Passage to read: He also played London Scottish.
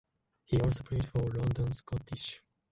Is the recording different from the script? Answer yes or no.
yes